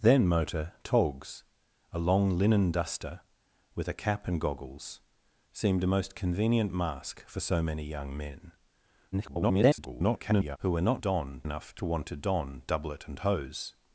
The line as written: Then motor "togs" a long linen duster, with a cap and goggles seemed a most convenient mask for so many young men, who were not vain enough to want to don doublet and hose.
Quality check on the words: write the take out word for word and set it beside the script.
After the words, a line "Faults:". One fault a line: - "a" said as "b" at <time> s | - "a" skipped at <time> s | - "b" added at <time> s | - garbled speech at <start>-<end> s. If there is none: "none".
Then motor "togs" a long linen duster, with a cap and goggles seemed a most convenient mask for so many young men, [garbled] who were not don enough to want to don doublet and hose.
Faults:
- garbled speech at 9.1-10.6 s
- "vain" said as "don" at 11.0 s